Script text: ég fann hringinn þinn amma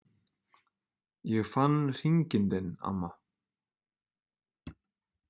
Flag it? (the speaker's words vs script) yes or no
no